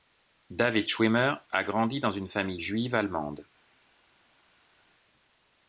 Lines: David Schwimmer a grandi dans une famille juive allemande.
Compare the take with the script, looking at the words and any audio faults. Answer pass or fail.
pass